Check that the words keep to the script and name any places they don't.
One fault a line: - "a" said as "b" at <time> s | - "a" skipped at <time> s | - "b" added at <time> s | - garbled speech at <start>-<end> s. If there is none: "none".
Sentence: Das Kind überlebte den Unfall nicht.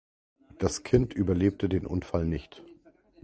none